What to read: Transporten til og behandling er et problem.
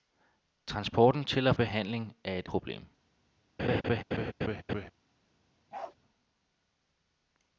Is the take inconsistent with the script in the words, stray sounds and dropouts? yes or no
yes